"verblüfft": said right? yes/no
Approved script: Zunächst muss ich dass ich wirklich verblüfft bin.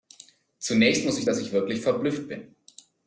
yes